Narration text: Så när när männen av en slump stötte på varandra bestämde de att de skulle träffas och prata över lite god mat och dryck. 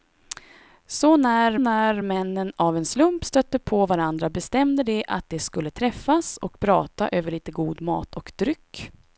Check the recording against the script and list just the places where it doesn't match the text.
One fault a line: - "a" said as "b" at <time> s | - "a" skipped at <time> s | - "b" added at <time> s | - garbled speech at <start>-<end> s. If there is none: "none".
none